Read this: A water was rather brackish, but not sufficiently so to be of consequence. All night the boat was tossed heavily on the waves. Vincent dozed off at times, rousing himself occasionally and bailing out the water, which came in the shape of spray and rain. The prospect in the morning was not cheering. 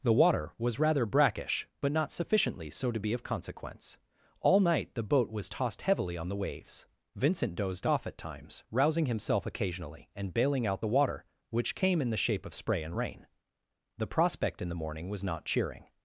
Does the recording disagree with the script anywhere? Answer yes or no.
yes